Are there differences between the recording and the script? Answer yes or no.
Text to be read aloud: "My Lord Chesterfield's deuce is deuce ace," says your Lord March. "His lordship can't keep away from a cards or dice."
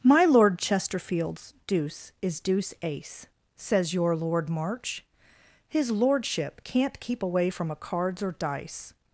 no